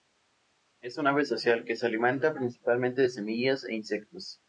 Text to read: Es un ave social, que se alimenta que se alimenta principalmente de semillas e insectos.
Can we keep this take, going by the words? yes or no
no